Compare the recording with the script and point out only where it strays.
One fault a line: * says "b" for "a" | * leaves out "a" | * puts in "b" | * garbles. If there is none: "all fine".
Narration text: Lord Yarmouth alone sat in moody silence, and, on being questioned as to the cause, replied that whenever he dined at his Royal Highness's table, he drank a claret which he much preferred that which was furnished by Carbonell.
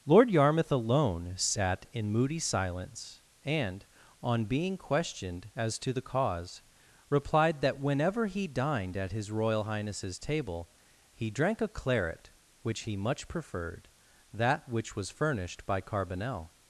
all fine